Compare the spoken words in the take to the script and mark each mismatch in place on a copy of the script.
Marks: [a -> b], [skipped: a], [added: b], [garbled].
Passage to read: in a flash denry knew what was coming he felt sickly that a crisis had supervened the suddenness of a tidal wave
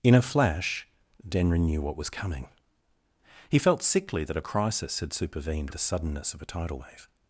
in a flash denry knew what was coming he felt sickly that a crisis had supervened the suddenness of a tidal wave